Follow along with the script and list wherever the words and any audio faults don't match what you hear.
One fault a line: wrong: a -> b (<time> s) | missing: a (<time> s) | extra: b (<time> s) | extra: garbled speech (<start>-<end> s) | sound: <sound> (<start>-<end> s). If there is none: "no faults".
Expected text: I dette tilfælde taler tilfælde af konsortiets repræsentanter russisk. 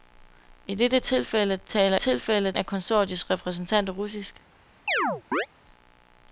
sound: chirp (4.9-5.5 s)